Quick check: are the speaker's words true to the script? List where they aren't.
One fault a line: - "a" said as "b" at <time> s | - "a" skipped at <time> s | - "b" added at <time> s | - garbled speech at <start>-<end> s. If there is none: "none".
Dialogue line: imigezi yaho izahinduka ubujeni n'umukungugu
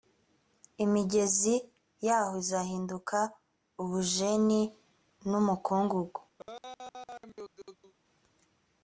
none